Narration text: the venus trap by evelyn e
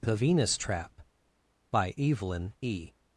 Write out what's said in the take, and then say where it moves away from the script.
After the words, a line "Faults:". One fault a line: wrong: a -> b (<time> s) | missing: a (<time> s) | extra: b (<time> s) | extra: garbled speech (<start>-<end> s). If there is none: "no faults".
the venus trap by evelyn e
Faults:
no faults